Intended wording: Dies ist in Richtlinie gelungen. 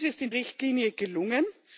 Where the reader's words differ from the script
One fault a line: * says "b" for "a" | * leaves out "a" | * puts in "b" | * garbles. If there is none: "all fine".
all fine